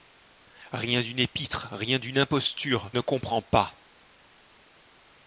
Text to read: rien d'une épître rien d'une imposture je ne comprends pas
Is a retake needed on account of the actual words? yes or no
yes